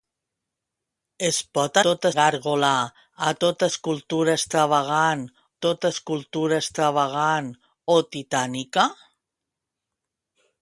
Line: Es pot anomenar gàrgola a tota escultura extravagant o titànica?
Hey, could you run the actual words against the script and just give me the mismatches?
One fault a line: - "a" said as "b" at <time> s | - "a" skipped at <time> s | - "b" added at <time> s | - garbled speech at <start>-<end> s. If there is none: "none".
- "anomenar" said as "tota" at 1.9 s
- "tota escultura extravagant" added at 5.7 s